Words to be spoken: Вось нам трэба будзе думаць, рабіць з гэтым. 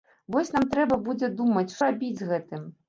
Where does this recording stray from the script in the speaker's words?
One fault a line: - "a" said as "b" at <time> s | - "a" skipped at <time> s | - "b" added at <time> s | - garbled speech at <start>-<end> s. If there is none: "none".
none